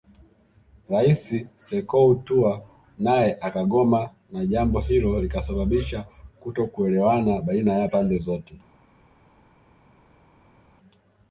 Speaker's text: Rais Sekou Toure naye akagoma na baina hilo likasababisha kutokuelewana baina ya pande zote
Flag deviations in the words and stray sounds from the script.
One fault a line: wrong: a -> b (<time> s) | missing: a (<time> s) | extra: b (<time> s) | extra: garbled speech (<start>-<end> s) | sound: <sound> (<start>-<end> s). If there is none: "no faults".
wrong: baina -> jambo (4.5 s)